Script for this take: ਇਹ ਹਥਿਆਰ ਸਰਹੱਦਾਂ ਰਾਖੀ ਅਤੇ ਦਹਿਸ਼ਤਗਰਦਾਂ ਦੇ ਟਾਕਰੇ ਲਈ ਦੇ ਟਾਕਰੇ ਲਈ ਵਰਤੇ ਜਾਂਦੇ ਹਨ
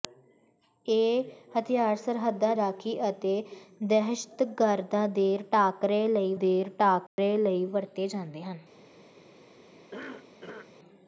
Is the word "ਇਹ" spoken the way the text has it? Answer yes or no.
yes